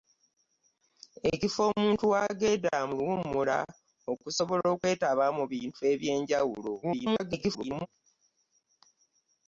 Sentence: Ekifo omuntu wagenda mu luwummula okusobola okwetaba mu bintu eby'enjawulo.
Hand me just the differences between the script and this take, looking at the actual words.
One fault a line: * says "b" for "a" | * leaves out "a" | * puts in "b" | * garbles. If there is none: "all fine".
* garbles